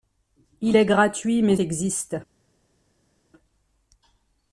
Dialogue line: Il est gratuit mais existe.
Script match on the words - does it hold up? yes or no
yes